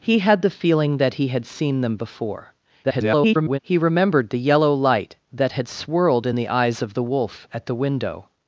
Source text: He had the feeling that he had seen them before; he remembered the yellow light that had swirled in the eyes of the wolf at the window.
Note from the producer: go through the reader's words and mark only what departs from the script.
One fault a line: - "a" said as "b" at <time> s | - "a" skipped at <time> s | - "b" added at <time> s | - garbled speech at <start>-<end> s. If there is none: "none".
- garbled speech at 2.8-3.6 s